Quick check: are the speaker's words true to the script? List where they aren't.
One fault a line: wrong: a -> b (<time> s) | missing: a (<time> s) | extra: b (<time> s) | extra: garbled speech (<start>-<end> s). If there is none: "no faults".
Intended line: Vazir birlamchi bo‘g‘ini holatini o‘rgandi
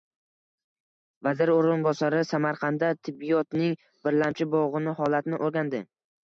extra: o‘rinbosari Samarqandda tibbiyotning (1.6 s)